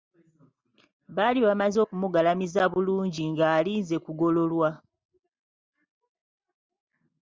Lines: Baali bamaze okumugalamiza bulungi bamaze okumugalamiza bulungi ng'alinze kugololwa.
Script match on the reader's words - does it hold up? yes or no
no